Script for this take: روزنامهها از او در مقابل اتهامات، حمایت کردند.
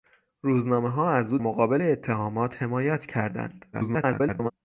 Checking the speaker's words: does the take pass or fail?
fail